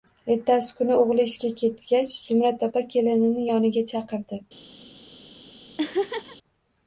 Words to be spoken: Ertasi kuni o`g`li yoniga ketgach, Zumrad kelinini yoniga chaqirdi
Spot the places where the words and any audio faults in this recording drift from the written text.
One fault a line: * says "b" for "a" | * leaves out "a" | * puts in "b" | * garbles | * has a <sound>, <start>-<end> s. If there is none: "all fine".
* says "ishga" for "yoniga"
* puts in "opa"
* has a laugh, 5.8-6.4 s